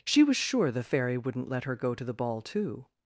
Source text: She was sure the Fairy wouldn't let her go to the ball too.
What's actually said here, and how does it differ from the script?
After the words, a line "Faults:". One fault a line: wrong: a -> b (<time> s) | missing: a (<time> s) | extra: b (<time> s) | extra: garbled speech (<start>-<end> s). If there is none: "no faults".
She was sure the Fairy wouldn't let her go to the ball too.
Faults:
no faults